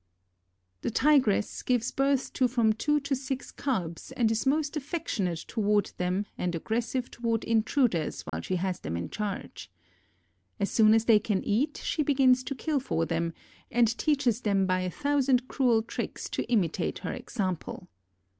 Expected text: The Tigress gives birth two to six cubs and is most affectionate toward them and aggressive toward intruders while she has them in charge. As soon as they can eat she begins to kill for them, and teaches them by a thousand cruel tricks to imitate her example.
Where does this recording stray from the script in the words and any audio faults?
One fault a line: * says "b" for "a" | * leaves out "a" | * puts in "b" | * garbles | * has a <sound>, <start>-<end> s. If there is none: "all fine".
* puts in "to from"
* has a dropout, 8.3-8.3 s